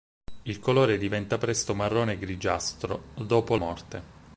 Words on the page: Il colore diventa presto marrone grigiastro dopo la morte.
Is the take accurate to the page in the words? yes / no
no